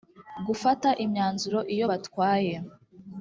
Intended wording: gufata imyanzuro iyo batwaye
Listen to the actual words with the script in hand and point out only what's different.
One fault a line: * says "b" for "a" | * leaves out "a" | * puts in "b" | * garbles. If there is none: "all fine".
all fine